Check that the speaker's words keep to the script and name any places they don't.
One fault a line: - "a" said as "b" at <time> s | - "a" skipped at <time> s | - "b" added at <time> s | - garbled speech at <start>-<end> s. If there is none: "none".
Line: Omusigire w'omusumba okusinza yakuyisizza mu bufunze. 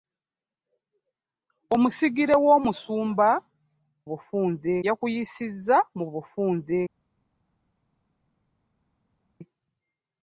- "okusinza" said as "bufunze" at 4.1 s